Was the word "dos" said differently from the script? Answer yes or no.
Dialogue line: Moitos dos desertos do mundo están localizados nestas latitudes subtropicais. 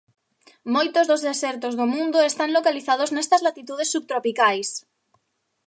no